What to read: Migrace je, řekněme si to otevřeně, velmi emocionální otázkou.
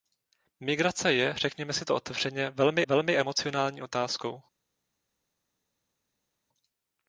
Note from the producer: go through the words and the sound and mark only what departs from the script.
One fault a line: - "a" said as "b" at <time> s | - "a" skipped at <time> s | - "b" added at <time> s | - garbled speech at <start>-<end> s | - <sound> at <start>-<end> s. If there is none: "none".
- "velmi" added at 2.8 s